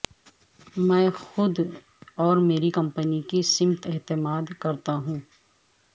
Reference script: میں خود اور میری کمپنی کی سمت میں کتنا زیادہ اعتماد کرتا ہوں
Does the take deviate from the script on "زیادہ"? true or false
true